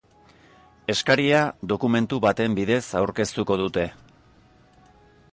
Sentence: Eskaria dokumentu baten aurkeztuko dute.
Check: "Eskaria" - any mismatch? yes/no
no